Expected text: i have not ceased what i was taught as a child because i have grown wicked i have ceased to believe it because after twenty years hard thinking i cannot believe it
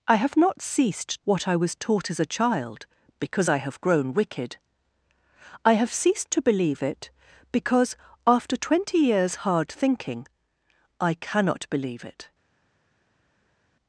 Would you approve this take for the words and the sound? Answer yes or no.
yes